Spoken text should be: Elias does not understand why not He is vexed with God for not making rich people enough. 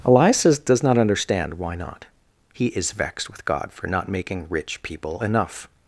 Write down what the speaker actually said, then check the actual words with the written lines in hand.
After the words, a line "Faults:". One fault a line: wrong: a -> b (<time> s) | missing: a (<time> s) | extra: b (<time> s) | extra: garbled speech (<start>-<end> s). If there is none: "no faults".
Elias does not understand why not He is vexed with God for not making rich people enough.
Faults:
no faults